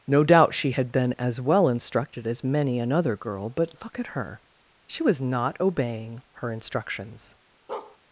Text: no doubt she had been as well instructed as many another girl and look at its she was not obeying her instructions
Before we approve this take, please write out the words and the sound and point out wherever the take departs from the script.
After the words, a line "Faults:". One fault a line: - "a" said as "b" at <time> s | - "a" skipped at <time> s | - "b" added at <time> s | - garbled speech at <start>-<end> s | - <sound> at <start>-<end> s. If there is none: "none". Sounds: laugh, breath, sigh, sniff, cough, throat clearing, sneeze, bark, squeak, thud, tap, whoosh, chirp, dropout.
no doubt she had been as well instructed as many another girl but look at her she was not obeying her instructions
Faults:
- "and" said as "but" at 3.5 s
- "its" said as "her" at 4.1 s
- bark at 7.7-8.0 s